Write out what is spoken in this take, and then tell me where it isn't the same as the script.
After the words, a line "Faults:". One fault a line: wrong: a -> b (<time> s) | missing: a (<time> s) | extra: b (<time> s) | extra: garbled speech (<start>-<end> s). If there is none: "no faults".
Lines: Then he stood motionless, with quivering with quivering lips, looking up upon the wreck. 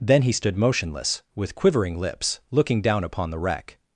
Then he stood motionless, with quivering lips, looking down upon the wreck.
Faults:
missing: with quivering (2.0 s)
wrong: up -> down (2.8 s)